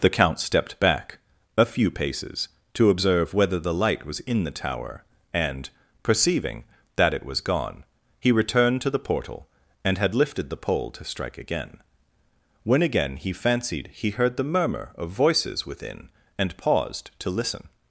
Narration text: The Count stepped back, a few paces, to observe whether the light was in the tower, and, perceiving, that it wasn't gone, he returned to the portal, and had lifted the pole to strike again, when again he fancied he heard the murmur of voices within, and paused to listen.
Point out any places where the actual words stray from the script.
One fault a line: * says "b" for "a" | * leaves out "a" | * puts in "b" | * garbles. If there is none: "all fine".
* says "was" for "wasn't"